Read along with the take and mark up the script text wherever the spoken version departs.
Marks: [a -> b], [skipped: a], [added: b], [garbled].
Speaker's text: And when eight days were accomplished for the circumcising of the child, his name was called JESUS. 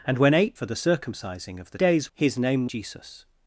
And when eight [skipped: days were accomplished] for the circumcising of the [child, -> days] his name [skipped: was called] JESUS.